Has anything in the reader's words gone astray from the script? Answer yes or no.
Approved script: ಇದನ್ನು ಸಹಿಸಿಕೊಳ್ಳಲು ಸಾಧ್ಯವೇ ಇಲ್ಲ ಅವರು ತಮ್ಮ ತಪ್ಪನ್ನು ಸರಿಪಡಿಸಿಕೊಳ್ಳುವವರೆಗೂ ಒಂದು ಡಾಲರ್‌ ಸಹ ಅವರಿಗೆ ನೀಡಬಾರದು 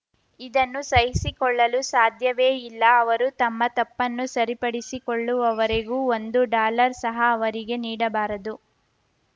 no